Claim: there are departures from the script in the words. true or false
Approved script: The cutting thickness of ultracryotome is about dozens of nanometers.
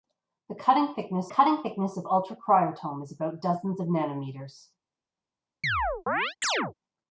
true